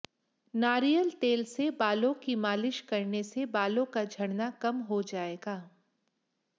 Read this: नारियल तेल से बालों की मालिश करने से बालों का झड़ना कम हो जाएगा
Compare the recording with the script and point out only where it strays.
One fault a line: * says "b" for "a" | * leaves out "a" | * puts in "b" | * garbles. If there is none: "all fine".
all fine